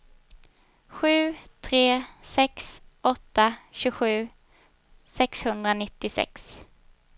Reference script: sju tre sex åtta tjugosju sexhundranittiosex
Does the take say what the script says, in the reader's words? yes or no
yes